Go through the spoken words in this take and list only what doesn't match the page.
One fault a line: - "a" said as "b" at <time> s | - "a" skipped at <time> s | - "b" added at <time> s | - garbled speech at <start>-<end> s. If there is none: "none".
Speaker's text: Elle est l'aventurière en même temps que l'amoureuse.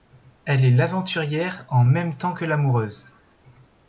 none